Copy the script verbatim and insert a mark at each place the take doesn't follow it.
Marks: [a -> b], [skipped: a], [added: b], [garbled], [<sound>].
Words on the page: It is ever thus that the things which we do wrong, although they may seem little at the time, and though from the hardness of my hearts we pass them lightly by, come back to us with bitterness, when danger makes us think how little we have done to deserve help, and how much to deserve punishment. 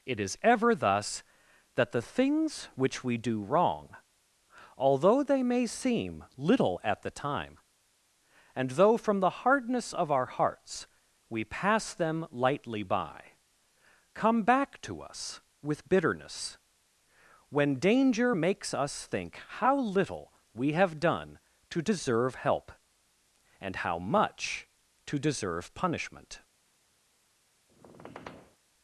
It is ever thus that the things which we do wrong, although they may seem little at the time, and though from the hardness of [my -> our] hearts we pass them lightly by, come back to us with bitterness, when danger makes us think how little we have done to deserve help, and how much to deserve punishment. [squeak]